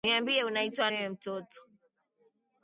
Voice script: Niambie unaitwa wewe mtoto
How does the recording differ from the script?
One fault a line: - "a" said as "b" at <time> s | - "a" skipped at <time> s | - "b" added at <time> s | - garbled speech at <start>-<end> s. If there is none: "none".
none